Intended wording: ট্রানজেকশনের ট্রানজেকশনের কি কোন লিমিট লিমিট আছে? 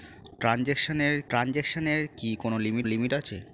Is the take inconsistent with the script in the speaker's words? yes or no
no